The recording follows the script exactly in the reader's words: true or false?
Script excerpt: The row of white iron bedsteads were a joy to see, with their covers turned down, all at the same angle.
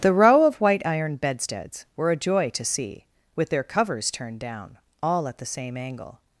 true